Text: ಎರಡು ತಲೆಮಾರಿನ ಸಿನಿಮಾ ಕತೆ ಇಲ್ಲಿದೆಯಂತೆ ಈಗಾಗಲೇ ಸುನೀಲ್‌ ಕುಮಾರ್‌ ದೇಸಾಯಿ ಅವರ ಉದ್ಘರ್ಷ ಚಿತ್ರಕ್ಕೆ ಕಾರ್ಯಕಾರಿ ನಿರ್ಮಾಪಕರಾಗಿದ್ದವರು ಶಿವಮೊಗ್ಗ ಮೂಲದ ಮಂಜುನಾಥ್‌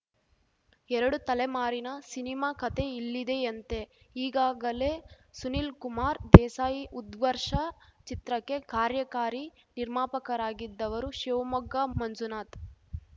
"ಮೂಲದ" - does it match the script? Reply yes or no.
no